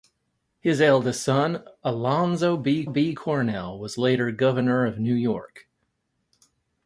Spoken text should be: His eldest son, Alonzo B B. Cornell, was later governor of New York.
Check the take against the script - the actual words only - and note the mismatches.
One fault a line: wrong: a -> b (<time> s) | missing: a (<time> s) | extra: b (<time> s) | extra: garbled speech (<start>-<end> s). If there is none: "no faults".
no faults